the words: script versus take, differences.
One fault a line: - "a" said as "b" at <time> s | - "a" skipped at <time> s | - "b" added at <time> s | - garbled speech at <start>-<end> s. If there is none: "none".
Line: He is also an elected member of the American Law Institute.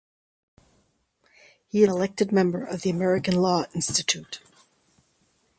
- "is also an" skipped at 1.8 s